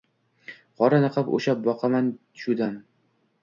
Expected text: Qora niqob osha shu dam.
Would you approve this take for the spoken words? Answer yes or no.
no